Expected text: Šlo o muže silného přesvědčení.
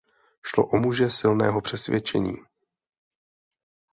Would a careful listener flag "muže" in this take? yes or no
no